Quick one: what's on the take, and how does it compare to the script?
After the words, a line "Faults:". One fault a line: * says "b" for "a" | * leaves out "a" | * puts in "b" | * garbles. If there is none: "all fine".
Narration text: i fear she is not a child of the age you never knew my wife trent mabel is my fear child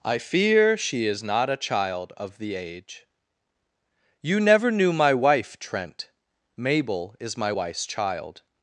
i fear she is not a child of the age you never knew my wife trent mabel is my wife's child
Faults:
* says "wife's" for "fear"